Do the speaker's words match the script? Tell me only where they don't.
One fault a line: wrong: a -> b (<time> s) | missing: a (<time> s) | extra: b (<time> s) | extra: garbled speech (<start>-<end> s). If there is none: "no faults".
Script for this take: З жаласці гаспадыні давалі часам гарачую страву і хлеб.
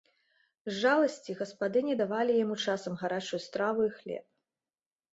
extra: яму (2.4 s)